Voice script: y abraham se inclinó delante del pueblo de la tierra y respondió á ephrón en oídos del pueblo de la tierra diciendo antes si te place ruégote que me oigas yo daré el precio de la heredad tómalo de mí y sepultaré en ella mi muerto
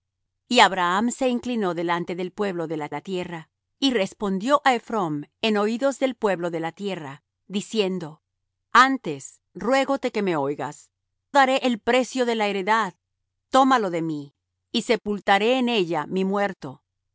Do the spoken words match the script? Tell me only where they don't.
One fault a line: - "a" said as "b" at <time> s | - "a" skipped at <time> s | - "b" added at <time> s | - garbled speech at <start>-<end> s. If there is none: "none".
- "la" added at 2.9 s
- "si te place" skipped at 9.4 s
- "yo" skipped at 10.9 s